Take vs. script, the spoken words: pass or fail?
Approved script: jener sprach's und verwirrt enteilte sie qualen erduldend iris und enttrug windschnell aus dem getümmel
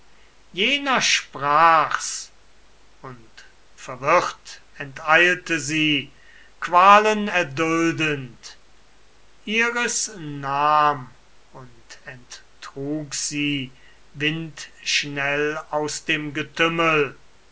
fail